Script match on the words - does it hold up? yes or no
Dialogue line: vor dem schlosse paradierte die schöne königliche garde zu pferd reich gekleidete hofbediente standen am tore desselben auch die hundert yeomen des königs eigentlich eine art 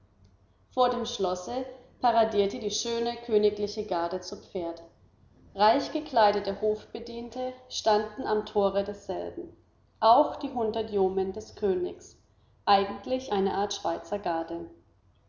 yes